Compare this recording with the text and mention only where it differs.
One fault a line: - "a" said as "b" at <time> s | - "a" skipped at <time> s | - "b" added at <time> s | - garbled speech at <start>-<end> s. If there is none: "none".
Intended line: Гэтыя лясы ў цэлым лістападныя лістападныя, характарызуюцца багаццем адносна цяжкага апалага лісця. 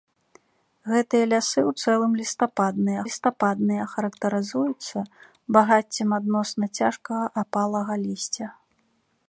none